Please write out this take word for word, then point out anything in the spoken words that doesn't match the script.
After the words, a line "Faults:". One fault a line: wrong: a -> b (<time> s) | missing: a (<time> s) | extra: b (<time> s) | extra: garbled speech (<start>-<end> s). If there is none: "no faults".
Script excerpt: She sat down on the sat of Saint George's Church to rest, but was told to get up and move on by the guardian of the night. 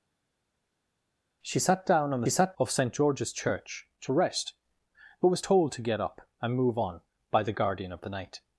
She sat down on the sat of Saint George's Church to rest, but was told to get up and move on by the guardian of the night.
Faults:
no faults